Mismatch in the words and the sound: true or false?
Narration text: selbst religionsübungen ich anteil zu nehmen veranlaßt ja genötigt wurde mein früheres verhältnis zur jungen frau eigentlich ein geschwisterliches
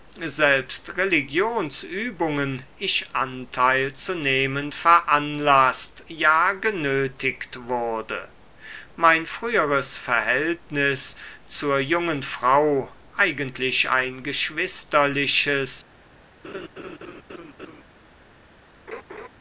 true